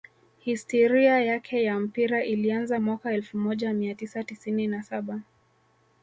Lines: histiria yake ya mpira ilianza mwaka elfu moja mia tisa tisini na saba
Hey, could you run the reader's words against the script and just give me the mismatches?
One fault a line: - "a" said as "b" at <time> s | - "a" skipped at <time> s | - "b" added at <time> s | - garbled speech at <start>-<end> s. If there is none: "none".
none